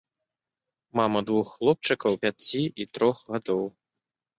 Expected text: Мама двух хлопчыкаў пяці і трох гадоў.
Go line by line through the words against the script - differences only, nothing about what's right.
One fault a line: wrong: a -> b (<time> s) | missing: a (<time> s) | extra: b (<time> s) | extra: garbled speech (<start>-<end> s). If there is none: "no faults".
no faults